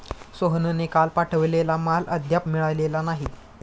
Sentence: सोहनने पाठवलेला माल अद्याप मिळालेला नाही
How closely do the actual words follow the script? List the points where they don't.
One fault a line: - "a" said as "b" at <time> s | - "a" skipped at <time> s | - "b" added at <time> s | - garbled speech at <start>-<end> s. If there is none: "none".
- "काल" added at 0.9 s